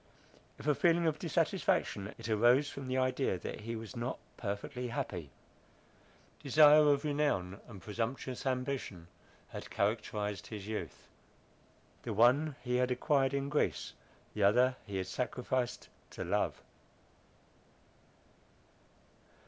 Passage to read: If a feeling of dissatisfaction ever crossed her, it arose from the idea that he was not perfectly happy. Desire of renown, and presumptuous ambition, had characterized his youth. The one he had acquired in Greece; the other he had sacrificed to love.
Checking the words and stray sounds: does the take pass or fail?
fail